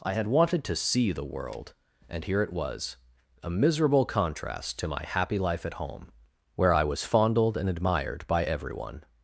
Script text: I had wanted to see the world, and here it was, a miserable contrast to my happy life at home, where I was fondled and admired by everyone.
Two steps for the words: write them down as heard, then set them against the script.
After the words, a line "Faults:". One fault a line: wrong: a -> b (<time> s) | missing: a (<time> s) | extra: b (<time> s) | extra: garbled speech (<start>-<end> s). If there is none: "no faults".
I had wanted to see the world, and here it was, a miserable contrast to my happy life at home, where I was fondled and admired by everyone.
Faults:
no faults